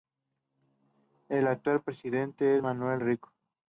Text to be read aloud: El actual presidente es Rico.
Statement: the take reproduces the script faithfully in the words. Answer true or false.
false